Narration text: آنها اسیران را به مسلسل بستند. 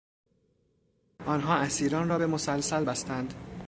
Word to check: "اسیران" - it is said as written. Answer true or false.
true